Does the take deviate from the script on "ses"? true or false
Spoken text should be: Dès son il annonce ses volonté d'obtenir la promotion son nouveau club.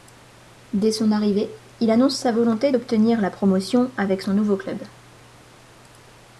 true